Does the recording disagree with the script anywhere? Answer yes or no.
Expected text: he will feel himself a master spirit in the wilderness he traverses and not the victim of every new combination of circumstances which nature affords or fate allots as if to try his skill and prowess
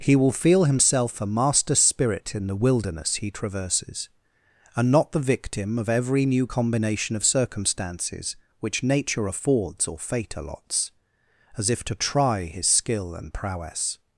no